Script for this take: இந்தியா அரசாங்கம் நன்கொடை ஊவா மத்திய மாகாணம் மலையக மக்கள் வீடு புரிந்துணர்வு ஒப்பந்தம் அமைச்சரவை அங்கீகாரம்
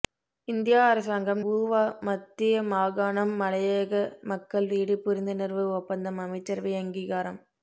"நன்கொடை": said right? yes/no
no